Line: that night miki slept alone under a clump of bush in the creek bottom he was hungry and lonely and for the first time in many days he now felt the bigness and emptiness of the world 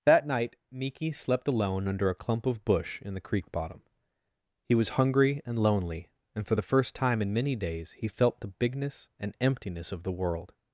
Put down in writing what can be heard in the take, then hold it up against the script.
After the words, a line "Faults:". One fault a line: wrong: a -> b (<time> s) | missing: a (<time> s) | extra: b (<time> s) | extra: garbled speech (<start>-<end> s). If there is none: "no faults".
that night miki slept alone under a clump of bush in the creek bottom he was hungry and lonely and for the first time in many days he felt the bigness and emptiness of the world
Faults:
missing: now (8.1 s)